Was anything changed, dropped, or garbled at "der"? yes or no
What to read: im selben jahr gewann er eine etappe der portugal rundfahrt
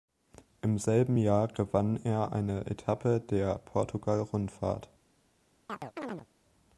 no